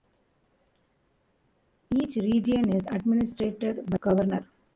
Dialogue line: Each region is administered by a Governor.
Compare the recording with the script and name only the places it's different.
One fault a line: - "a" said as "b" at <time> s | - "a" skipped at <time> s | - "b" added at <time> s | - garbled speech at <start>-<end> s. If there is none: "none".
- "a" skipped at 4.0 s